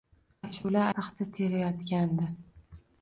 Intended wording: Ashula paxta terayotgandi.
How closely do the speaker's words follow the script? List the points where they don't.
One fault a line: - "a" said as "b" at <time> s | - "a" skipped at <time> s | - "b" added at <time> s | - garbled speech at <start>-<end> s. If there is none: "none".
none